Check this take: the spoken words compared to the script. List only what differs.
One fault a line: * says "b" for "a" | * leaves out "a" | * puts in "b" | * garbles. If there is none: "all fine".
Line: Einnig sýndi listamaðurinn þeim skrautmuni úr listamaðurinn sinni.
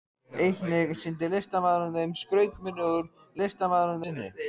all fine